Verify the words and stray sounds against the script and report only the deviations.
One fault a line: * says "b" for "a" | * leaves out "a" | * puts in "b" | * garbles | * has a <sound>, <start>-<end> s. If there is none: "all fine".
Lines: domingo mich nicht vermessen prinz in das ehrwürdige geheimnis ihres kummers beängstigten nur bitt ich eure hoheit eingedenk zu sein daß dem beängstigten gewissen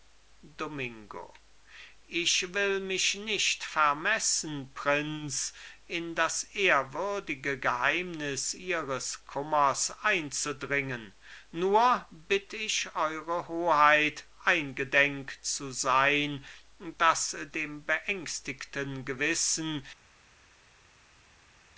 * puts in "ich will"
* says "einzudringen" for "beängstigten"